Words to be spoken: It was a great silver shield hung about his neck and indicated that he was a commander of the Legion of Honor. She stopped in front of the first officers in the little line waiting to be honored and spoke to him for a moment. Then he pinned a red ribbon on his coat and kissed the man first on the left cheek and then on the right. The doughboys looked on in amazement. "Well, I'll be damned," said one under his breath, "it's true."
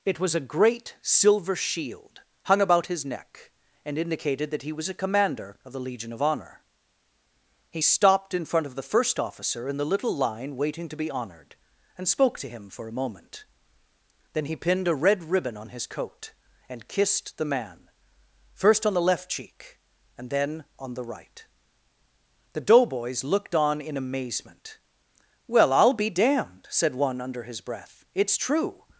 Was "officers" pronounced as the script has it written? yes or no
no